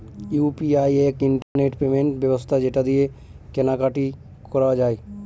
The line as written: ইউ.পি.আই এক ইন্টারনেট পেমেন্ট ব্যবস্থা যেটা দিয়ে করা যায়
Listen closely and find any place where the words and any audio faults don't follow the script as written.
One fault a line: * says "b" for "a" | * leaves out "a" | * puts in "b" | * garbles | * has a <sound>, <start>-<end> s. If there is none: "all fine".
* has a dropout, 1.4-1.6 s
* puts in "কেনা কাটি"